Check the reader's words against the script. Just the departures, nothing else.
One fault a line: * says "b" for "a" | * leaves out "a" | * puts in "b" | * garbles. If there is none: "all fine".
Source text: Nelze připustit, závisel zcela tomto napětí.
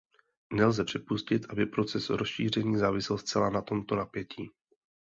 * puts in "aby proces rozšíření"
* puts in "na"